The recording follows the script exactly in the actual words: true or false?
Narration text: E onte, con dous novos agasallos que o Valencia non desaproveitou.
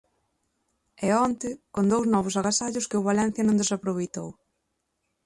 true